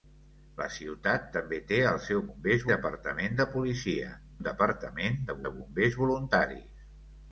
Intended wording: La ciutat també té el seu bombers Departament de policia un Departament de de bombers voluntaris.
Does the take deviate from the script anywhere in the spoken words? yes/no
no